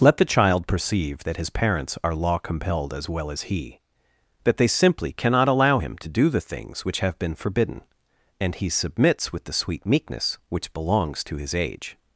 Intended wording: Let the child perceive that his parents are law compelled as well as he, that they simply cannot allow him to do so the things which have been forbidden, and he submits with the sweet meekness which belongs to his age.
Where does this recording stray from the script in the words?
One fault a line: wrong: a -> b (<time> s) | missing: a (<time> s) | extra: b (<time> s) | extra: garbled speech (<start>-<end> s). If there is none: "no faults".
missing: so (6.3 s)